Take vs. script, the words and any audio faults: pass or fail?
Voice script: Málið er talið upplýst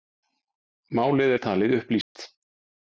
fail